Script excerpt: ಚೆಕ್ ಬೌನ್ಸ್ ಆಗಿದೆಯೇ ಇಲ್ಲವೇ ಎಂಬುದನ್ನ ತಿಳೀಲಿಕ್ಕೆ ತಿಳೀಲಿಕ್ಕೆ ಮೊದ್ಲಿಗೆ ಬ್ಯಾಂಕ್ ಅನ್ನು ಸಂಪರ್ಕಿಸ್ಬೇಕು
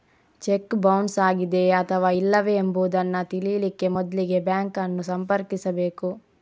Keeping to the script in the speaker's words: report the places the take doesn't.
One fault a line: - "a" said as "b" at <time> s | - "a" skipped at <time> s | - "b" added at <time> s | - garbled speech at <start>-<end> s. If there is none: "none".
- "ಅಥವಾ" added at 1.8 s
- "ತಿಳೀಲಿಕ್ಕೆ" skipped at 3.9 s